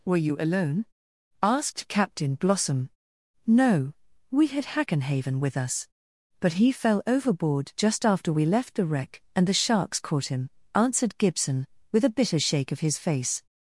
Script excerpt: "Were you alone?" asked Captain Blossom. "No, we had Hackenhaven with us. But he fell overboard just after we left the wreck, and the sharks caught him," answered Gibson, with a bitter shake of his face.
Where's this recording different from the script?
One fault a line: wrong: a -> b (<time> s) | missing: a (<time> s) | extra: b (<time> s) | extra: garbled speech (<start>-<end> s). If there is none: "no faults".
no faults